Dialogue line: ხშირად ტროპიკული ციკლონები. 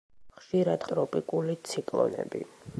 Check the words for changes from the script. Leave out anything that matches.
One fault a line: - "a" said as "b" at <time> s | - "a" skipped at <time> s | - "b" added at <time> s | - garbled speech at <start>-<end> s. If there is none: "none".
none